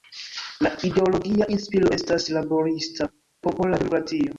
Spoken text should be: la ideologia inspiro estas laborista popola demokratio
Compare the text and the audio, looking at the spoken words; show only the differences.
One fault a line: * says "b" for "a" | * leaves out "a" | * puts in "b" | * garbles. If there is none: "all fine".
all fine